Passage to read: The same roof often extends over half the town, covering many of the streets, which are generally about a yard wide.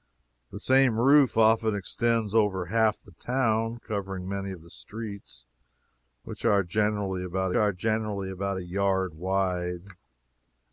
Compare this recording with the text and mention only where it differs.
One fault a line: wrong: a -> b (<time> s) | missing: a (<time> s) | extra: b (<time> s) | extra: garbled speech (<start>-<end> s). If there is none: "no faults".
extra: are generally about (7.5 s)